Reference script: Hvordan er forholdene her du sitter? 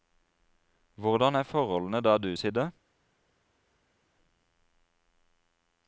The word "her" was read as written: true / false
false